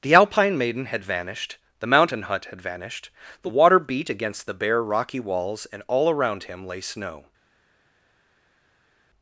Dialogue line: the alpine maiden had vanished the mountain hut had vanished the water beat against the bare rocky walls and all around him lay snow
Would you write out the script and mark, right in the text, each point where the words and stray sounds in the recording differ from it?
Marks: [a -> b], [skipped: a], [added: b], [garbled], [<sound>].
the alpine maiden had vanished the mountain hut had vanished the water beat against the bare rocky walls and all around him lay snow